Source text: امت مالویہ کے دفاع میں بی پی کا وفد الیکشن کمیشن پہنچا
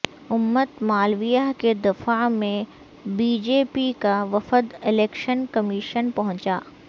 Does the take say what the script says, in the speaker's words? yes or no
no